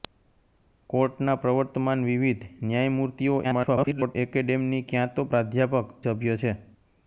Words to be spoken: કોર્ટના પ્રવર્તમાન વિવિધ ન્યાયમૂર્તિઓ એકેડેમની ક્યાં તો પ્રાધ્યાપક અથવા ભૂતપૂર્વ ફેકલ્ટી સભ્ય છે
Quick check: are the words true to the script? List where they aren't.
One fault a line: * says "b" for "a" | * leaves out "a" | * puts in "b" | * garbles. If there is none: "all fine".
* garbles
* leaves out "અથવા ભૂતપૂર્વ ફેકલ્ટી"